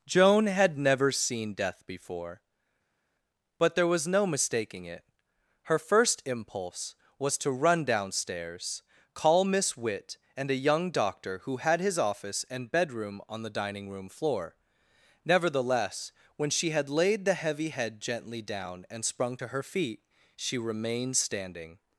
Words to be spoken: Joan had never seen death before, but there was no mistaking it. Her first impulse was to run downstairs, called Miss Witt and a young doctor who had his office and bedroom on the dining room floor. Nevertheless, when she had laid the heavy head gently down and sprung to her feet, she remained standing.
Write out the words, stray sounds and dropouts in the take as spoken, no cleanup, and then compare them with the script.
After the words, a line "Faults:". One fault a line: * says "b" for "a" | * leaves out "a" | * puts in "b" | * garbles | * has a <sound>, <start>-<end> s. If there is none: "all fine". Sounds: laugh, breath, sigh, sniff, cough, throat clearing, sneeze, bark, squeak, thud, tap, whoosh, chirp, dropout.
Joan had never seen death before, but there was no mistaking it. Her first impulse was to run downstairs, call Miss Witt and a young doctor who had his office and bedroom on the dining room floor. Nevertheless, when she had laid the heavy head gently down and sprung to her feet, she remained standing.
Faults:
* says "call" for "called"